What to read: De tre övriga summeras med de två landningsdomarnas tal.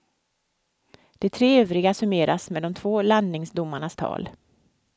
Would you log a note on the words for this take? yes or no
no